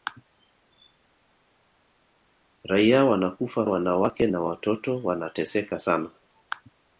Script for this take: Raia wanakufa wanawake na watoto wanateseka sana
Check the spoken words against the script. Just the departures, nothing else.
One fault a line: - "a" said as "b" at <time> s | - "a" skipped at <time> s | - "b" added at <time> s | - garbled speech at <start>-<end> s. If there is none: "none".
none